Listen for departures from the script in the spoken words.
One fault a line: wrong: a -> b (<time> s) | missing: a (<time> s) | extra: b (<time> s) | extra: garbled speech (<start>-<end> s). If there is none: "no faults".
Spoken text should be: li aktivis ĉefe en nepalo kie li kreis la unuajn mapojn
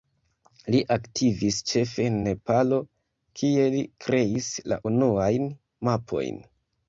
no faults